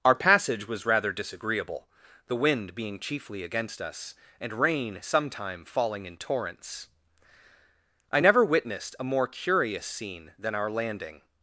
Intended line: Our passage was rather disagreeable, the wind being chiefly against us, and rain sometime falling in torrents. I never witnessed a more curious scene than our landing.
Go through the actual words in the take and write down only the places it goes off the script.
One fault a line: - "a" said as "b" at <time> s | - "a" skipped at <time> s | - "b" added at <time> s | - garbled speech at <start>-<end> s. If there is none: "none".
none